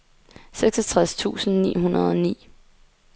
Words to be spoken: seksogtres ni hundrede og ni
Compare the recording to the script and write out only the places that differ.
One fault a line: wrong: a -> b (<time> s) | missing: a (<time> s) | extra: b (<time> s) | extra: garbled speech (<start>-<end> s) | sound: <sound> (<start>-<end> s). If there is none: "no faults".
extra: tusind (1.1 s)